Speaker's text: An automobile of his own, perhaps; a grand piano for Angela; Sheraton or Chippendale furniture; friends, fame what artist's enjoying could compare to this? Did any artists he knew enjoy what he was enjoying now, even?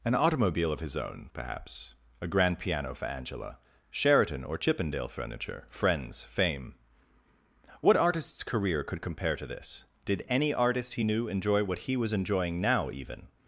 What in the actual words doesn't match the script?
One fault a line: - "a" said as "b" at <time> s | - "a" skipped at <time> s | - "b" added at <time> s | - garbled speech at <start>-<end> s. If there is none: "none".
- "enjoying" said as "career" at 8.4 s
- "artists" said as "artist" at 10.5 s